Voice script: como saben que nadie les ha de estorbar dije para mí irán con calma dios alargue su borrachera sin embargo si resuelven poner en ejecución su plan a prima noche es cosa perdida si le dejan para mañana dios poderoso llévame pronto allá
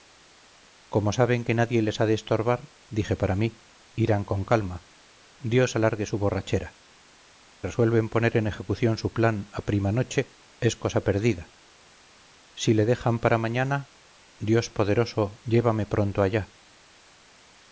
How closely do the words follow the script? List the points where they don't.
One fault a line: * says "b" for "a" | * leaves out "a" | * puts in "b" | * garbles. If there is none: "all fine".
* leaves out "sin embargo si"